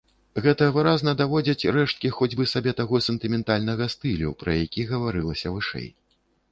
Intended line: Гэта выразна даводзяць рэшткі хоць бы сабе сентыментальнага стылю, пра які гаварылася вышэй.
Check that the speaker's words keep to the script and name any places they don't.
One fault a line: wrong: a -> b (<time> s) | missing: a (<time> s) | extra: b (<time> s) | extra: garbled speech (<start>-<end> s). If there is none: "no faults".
extra: таго (2.8 s)